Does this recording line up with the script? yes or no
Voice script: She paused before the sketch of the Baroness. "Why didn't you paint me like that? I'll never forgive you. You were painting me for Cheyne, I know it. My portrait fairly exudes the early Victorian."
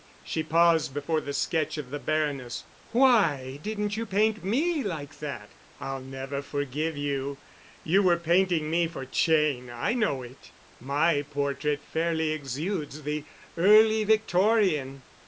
yes